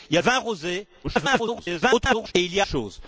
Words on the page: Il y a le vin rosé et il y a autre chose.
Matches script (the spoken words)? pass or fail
fail